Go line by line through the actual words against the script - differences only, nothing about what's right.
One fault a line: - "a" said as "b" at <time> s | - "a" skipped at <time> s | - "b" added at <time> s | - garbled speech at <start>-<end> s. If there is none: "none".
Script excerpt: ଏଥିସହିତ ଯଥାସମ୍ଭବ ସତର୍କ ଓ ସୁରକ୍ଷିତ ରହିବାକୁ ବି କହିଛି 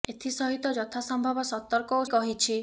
- "ସୁରକ୍ଷିତ ରହିବାକୁ ବି" skipped at 2.0 s